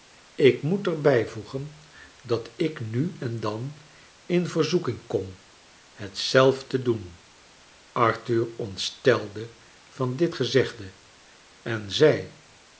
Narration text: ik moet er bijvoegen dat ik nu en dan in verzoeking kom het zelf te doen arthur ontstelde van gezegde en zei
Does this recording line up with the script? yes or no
no